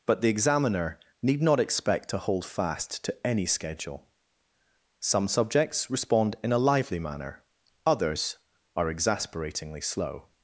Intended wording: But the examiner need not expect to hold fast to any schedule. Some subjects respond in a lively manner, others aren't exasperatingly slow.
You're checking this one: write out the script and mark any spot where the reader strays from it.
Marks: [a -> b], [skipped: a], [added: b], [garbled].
But the examiner need not expect to hold fast to any schedule. Some subjects respond in a lively manner, others [aren't -> are] exasperatingly slow.